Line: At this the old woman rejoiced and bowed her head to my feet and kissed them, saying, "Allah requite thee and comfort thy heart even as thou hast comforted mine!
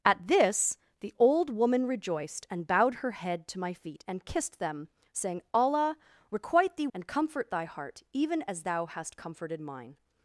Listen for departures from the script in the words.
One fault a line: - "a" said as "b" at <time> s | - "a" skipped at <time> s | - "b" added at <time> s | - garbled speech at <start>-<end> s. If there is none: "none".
none